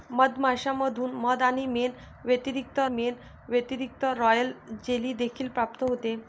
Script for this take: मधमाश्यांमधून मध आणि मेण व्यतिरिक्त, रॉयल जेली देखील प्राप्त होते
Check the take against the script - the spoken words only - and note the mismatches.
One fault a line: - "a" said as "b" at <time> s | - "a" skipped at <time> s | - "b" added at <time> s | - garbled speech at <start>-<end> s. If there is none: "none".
- "मेण व्यतिरिक्त" added at 2.9 s